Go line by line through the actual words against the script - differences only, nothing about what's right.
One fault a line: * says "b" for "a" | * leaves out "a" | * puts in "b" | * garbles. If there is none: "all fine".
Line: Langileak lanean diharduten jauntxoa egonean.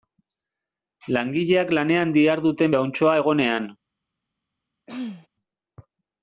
all fine